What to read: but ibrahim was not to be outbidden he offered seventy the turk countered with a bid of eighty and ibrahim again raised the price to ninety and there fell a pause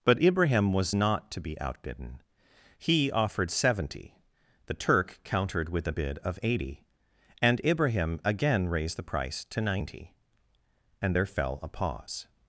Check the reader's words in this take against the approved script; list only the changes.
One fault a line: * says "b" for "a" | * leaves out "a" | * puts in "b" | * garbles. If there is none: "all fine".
all fine